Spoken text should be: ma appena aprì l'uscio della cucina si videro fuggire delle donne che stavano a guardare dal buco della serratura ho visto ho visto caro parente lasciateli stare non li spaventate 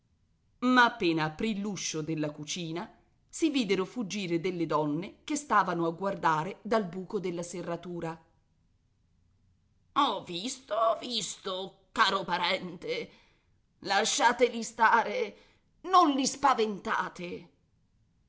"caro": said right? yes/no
yes